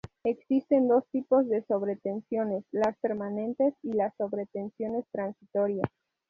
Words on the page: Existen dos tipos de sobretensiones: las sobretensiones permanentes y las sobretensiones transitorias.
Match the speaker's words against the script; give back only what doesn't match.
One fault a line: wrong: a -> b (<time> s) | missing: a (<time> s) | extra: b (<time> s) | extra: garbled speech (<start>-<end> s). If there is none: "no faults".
missing: sobretensiones (3.0 s)